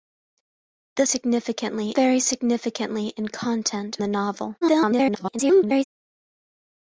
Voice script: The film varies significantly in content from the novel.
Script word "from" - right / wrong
wrong